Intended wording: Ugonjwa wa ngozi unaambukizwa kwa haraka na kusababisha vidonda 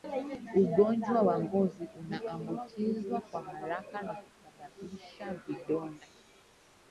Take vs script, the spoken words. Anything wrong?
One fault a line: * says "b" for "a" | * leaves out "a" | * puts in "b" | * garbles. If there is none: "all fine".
all fine